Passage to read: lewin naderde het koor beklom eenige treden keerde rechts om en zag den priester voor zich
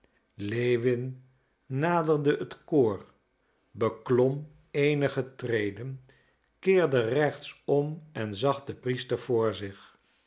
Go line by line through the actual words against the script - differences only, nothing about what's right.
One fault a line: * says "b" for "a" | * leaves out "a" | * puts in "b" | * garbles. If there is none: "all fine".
all fine